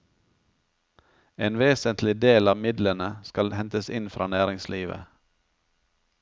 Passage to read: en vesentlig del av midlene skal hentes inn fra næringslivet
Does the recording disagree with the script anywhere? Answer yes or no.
no